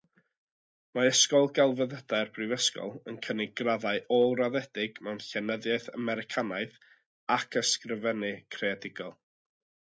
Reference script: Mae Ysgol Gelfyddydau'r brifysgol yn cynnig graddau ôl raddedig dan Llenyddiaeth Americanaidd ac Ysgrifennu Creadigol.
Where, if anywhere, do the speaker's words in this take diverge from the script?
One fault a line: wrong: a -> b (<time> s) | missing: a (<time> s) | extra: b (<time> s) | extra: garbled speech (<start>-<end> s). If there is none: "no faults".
wrong: dan -> mewn (5.1 s)